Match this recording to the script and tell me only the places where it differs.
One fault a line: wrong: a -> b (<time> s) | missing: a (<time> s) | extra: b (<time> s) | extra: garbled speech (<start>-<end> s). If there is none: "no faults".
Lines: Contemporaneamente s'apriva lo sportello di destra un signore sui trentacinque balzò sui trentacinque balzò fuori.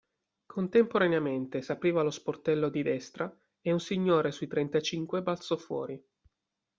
extra: e (3.6 s)
missing: sui trentacinque balzò (5.6 s)